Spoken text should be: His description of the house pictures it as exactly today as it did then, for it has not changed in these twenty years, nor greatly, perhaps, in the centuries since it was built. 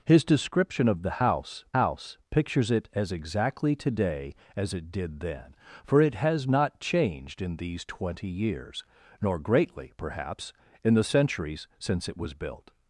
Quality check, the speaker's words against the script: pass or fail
fail